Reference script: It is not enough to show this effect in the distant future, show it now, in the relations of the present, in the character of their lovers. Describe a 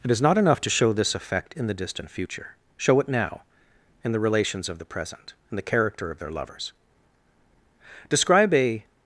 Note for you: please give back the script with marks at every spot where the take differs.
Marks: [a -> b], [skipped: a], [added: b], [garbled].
It is not enough to show this effect in the distant future, show it now, in the relations of the present, in the character of their lovers. Describe a